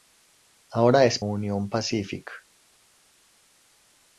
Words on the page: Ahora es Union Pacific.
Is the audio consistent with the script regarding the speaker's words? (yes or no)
yes